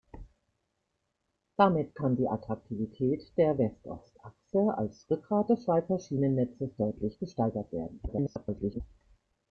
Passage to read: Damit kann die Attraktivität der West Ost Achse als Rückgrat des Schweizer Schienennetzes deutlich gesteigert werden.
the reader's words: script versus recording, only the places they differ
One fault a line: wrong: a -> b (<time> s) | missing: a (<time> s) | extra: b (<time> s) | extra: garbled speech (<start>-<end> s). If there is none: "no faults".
extra: garbled speech (8.1-8.8 s)